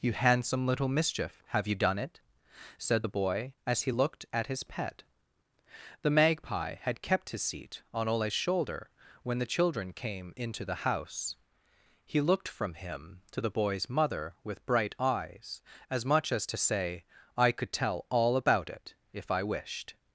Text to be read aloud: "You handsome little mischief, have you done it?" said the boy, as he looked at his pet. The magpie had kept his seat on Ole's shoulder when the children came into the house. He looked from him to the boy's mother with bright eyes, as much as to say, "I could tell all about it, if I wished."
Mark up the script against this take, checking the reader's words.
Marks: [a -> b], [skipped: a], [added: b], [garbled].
"You handsome little mischief, have you done it?" said the boy, as he looked at his pet. The magpie had kept his seat on Ole's shoulder when the children came into the house. He looked from him to the boy's mother with bright eyes, as much as to say, "I could tell all about it, if I wished."